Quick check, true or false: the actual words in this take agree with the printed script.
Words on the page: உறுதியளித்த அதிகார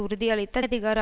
true